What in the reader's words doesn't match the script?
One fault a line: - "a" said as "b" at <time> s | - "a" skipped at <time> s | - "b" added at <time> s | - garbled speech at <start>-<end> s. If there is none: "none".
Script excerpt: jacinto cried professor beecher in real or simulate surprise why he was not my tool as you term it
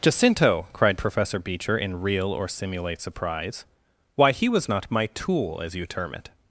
none